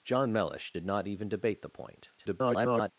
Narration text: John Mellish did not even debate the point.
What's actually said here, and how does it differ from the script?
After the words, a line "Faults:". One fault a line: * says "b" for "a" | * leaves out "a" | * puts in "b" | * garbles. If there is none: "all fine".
John Mellish did not even debate the point. [garbled]
Faults:
* garbles